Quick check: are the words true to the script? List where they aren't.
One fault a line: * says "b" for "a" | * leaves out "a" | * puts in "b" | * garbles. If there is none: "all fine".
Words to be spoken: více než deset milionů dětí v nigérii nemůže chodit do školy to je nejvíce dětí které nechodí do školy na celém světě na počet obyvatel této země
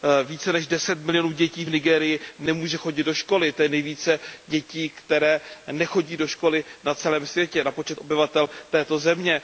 all fine